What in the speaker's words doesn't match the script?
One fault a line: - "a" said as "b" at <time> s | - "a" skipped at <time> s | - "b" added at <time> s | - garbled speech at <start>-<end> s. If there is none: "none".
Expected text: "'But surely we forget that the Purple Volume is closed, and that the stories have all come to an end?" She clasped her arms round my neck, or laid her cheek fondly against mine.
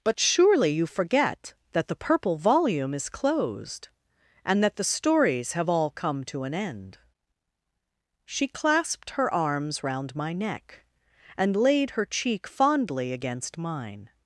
- "we" said as "you" at 0.7 s
- "or" said as "and" at 11.4 s